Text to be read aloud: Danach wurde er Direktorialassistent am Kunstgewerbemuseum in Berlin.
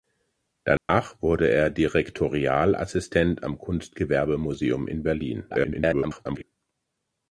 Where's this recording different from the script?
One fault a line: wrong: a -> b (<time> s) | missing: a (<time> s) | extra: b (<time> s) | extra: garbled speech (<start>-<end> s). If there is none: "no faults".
extra: garbled speech (5.5-6.4 s)